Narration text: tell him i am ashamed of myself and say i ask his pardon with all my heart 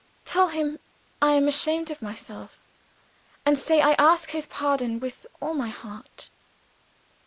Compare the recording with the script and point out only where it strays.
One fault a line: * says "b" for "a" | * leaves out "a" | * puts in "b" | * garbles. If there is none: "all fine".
all fine